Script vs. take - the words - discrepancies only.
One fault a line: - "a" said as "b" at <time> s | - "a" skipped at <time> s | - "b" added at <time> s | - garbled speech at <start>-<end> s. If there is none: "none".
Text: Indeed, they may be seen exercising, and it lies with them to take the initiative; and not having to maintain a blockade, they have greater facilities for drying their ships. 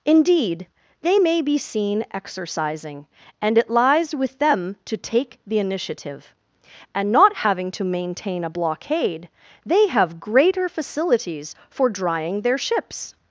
none